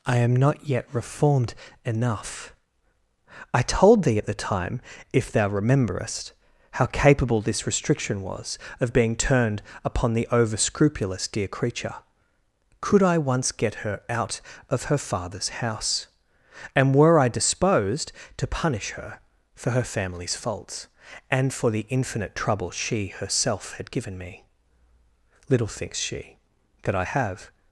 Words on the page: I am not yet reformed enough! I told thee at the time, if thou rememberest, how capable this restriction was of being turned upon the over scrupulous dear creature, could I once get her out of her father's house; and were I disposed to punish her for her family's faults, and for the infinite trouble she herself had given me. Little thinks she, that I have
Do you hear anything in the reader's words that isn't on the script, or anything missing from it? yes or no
no